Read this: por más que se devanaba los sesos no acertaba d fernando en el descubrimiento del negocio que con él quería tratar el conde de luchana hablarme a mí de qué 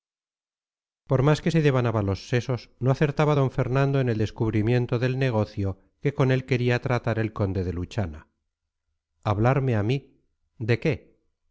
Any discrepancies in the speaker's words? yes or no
no